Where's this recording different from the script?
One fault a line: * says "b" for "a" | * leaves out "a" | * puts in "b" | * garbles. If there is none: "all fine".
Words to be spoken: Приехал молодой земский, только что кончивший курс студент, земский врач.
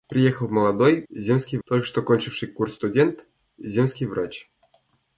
all fine